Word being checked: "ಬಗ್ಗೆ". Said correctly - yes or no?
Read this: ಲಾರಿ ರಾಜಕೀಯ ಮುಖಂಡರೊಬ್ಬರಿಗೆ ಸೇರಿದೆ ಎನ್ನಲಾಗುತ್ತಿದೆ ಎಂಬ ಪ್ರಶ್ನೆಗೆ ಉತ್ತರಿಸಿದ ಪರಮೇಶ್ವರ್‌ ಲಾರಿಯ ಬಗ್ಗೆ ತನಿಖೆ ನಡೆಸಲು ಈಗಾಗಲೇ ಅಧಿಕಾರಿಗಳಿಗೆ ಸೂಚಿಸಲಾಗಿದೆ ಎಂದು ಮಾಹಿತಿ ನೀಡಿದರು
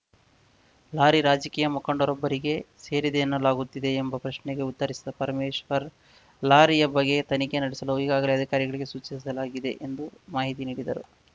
yes